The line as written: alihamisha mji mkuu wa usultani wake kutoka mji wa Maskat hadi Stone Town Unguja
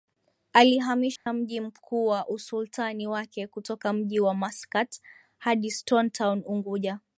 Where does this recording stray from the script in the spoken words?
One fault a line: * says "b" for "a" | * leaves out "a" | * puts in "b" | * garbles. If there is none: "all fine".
all fine